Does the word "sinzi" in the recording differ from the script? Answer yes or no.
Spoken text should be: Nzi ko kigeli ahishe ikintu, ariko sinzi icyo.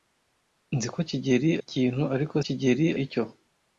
yes